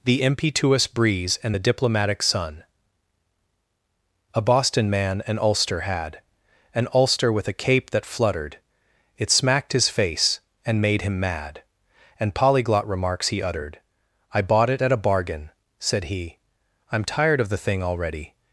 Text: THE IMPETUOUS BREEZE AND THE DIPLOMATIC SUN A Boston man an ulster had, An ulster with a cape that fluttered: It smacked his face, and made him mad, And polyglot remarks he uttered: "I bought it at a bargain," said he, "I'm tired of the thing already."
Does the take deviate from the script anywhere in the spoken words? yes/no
no